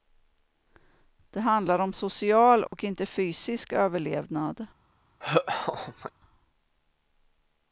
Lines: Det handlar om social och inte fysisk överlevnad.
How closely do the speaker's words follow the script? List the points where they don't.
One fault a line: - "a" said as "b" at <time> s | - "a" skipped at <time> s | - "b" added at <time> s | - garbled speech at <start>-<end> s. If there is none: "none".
none